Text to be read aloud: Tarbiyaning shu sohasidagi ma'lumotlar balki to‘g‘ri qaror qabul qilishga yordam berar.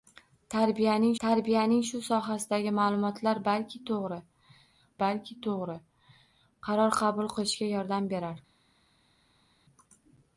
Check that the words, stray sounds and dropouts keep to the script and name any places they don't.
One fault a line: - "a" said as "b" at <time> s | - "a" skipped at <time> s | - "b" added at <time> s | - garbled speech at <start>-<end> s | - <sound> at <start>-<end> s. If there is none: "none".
- "tarbiyaning" added at 1.2 s
- "balki to‘g‘ri" added at 5.0 s